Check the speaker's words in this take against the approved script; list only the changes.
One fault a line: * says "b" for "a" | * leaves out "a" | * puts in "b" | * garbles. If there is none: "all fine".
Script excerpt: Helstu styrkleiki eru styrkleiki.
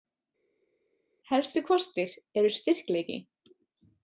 * says "kostir" for "styrkleiki"